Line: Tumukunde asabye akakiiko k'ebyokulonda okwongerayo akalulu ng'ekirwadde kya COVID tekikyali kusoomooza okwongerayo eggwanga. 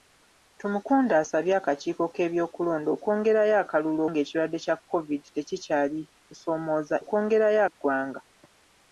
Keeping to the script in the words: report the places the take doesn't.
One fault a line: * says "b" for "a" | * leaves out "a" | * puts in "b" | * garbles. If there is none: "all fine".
all fine